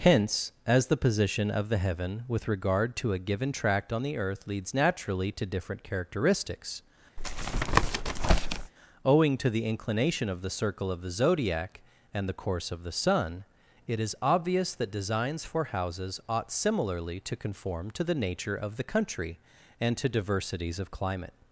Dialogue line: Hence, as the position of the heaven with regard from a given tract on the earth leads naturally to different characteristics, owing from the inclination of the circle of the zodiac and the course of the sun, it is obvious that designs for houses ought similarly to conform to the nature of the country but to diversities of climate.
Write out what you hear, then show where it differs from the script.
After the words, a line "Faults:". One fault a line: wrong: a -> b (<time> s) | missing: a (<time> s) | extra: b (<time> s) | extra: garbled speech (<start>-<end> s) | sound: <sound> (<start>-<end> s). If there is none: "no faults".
Hence, as the position of the heaven with regard to a given tract on the earth leads naturally to different characteristics, owing to the inclination of the circle of the zodiac and the course of the sun, it is obvious that designs for houses ought similarly to conform to the nature of the country and to diversities of climate.
Faults:
wrong: from -> to (3.0 s)
sound: tap (7.2-8.7 s)
wrong: from -> to (9.4 s)
wrong: but -> and (19.8 s)